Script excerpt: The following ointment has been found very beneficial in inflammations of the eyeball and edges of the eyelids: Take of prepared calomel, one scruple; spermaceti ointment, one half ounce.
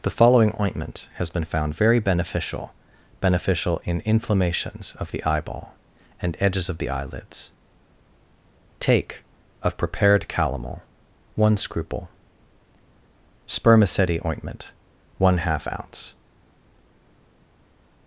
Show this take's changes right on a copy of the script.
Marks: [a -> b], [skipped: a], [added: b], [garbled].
The following ointment has been found very beneficial [added: beneficial] in inflammations of the eyeball and edges of the eyelids: Take of prepared calomel, one scruple; spermaceti ointment, one half ounce.